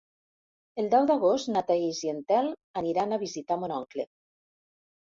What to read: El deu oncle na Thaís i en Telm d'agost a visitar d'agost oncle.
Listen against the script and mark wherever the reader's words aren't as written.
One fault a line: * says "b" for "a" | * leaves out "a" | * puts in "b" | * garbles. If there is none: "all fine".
* says "d'agost" for "oncle"
* says "aniran" for "d'agost"
* says "mon" for "d'agost"